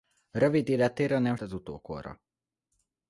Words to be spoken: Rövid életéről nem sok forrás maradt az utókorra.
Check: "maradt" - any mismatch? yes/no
yes